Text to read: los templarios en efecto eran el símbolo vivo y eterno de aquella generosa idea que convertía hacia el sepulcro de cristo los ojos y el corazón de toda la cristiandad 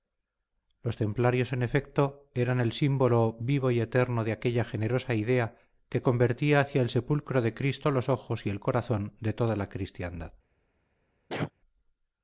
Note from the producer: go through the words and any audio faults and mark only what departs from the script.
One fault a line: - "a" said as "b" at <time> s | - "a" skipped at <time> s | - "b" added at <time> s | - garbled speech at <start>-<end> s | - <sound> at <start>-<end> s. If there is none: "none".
- sneeze at 11.3-11.5 s